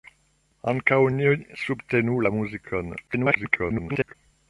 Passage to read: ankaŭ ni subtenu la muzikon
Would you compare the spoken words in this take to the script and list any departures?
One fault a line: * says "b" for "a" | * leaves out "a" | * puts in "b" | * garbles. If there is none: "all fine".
* garbles